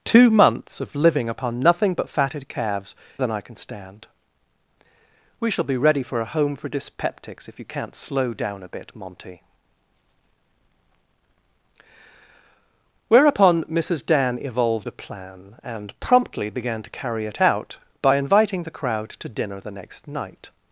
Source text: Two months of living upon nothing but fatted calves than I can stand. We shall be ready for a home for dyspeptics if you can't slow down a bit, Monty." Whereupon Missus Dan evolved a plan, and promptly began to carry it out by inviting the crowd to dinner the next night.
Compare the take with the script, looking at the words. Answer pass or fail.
pass